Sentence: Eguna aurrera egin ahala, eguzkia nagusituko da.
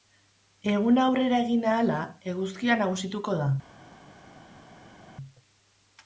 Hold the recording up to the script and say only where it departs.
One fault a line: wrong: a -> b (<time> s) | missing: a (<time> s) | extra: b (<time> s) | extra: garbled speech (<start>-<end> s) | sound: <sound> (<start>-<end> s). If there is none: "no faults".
no faults